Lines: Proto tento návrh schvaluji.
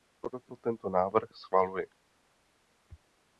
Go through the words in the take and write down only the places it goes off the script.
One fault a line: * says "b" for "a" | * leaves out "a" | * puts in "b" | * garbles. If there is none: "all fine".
all fine